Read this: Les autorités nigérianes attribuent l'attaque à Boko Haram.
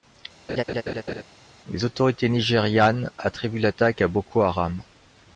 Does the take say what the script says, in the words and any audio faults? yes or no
no